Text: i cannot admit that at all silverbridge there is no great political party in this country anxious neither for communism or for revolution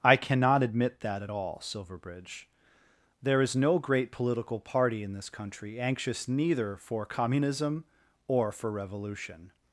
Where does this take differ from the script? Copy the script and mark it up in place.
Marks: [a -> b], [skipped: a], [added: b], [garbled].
i cannot admit that at all silverbridge there is no great political party in this country anxious neither for communism or for revolution